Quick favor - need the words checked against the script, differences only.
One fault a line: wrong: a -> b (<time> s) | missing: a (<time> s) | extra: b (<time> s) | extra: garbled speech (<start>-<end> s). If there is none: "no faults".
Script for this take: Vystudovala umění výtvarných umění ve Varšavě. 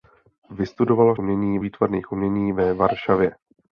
no faults